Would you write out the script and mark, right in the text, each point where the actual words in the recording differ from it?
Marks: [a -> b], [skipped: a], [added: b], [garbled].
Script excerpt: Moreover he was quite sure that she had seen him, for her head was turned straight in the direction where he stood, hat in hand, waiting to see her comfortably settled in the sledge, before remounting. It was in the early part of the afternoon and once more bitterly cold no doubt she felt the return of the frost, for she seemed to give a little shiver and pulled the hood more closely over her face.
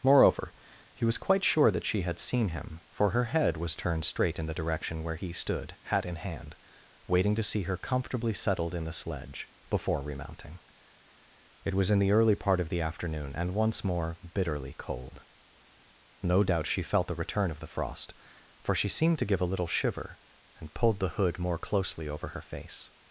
Moreover he was quite sure that she had seen him, for her head was turned straight in the direction where he stood, hat in hand, waiting to see her comfortably settled in the sledge, before remounting. It was in the early part of the afternoon and once more bitterly cold no doubt she felt the return of the frost, for she seemed to give a little shiver and pulled the hood more closely over her face.